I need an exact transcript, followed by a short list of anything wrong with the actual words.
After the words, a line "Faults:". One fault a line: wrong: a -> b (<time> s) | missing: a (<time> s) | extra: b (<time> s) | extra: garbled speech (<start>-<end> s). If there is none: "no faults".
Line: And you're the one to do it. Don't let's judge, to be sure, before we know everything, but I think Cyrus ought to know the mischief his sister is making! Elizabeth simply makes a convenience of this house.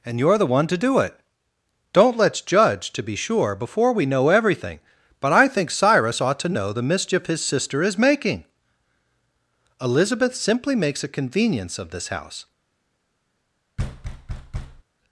And you're the one to do it. Don't let's judge, to be sure, before we know everything, but I think Cyrus ought to know the mischief his sister is making! Elizabeth simply makes a convenience of this house.
Faults:
no faults